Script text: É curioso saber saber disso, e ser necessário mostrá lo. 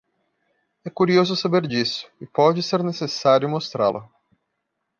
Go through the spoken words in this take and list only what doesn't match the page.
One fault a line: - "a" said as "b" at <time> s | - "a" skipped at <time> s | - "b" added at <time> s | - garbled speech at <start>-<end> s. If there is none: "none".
- "saber" skipped at 1.7 s
- "pode" added at 2.2 s